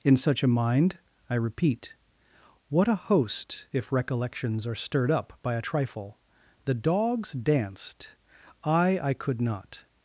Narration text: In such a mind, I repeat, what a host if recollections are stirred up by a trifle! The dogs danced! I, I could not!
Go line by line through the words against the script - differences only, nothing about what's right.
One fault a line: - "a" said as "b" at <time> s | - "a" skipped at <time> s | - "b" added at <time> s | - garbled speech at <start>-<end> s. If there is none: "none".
none